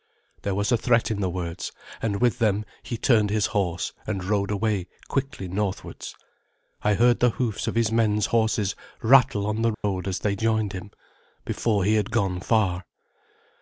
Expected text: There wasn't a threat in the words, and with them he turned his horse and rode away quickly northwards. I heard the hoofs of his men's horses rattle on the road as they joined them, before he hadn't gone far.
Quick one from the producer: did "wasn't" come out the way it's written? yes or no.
no